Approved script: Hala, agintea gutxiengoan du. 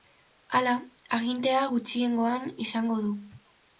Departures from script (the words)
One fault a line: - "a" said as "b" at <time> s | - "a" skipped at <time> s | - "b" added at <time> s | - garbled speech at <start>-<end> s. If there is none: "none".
- "izango" added at 2.7 s